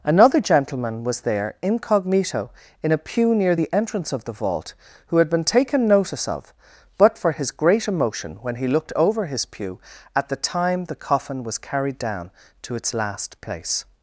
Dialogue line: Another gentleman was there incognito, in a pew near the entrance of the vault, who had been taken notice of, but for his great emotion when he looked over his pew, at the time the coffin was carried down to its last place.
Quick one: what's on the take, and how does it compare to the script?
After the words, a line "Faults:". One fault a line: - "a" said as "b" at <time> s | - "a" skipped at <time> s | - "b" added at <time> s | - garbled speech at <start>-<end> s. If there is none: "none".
Another gentleman was there incognito, in a pew near the entrance of the vault, who had been taken notice of, but for his great emotion when he looked over his pew, at the time the coffin was carried down to its last place.
Faults:
none